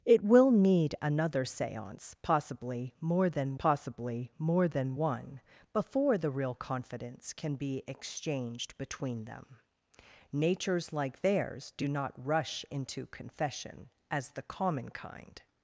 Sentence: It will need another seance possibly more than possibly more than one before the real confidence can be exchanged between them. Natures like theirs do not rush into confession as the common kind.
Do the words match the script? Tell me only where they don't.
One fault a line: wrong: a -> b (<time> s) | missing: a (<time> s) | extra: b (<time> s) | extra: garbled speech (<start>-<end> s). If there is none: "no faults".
no faults